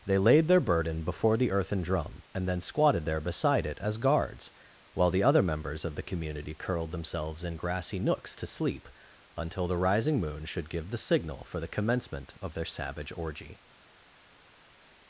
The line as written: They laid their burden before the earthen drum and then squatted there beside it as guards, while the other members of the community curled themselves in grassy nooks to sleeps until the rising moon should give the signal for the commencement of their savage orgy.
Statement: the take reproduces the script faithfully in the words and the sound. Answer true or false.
false